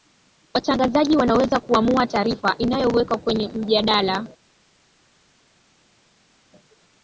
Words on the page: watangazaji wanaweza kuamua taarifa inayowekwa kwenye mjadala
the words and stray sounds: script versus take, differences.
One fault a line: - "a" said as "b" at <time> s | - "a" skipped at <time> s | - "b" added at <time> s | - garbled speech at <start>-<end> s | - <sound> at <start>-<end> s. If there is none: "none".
none